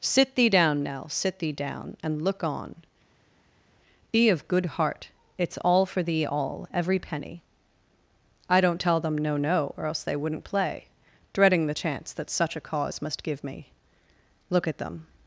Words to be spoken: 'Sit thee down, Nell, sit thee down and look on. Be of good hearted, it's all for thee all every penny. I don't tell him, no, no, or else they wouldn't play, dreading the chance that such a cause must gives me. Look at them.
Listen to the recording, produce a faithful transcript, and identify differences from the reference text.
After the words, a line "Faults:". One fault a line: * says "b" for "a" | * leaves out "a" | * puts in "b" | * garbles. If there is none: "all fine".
'Sit thee down, Nell, sit thee down and look on. Be of good heart, it's all for thee all every penny. I don't tell them, no, no, or else they wouldn't play, dreading the chance that such a cause must give me. Look at them.
Faults:
* says "heart" for "hearted"
* says "them" for "him"
* says "give" for "gives"